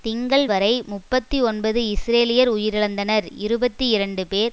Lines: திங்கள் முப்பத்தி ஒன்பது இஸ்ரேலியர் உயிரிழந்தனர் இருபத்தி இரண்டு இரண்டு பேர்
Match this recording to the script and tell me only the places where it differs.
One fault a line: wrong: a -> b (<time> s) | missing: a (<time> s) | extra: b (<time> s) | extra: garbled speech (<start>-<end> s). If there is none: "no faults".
extra: வரை (0.4 s)
missing: இரண்டு (4.2 s)